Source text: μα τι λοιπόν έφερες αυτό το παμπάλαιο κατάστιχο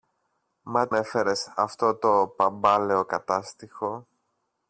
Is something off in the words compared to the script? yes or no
yes